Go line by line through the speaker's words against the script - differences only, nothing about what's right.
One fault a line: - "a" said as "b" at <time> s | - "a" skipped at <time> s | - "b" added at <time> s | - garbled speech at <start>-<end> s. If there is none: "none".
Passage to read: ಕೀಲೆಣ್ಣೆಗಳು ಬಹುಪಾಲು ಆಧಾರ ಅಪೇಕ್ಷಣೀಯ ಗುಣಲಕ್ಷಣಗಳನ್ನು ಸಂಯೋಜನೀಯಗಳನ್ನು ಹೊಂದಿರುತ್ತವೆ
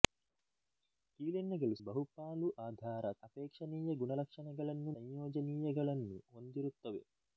none